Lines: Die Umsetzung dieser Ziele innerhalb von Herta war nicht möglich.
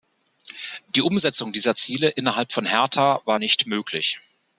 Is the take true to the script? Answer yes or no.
yes